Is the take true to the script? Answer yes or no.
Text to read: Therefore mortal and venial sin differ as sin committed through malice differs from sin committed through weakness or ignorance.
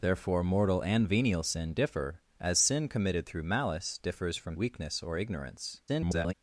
no